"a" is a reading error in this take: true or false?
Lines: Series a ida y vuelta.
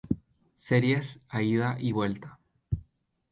false